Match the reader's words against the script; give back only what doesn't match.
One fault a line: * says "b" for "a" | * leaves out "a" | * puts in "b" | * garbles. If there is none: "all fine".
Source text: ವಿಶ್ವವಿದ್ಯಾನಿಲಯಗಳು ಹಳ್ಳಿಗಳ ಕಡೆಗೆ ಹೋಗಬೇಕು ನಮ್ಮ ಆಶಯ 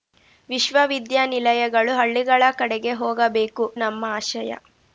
all fine